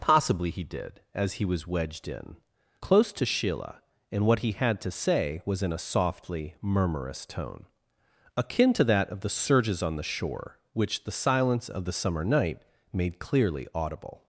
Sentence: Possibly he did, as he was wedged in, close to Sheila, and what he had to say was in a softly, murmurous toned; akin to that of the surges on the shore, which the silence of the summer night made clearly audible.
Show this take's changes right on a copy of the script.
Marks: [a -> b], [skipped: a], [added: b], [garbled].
Possibly he did, as he was wedged in, close to Sheila, and what he had to say was in a softly, murmurous [toned; -> tone] akin to that of the surges on the shore, which the silence of the summer night made clearly audible.